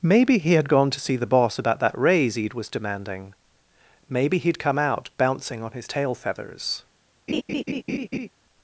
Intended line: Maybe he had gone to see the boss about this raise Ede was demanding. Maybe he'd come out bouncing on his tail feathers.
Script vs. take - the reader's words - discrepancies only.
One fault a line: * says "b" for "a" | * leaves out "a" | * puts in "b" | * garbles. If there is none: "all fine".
* says "that" for "this"